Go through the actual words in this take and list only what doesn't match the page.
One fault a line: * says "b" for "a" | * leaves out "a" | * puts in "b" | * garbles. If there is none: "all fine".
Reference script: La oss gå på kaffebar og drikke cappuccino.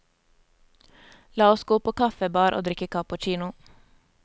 all fine